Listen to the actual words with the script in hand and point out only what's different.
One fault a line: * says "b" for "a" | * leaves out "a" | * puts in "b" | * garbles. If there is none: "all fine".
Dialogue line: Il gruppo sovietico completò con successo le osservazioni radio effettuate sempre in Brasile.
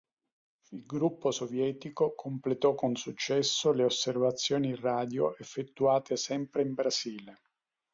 all fine